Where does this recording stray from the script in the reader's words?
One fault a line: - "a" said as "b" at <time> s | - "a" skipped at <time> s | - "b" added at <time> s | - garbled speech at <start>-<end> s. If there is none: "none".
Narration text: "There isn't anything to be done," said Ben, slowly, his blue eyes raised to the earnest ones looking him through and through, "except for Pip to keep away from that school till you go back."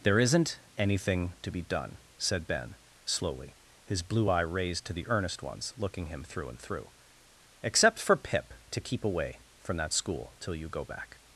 - "eyes" said as "eye" at 4.3 s